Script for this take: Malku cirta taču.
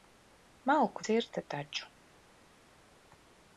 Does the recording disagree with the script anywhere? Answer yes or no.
no